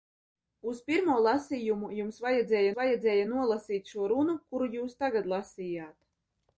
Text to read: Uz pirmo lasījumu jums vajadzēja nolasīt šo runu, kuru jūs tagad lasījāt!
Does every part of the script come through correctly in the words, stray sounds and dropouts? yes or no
no